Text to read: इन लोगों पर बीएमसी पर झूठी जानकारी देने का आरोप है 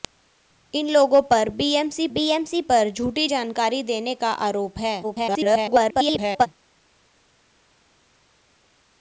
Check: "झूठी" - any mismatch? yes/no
no